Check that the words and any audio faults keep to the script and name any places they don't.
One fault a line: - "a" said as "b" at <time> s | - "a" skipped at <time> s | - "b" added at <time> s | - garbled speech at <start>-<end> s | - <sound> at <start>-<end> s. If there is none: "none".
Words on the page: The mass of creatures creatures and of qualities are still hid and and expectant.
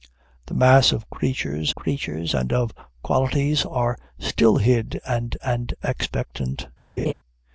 - laugh at 7.0-7.1 s